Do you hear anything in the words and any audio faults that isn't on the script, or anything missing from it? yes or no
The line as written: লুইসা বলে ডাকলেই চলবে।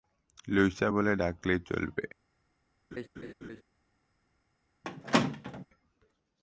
yes